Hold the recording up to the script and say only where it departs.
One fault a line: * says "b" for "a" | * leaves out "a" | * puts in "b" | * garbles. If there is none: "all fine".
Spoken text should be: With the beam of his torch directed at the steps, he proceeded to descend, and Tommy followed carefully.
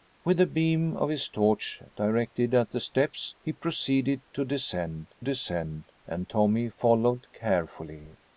* puts in "descend"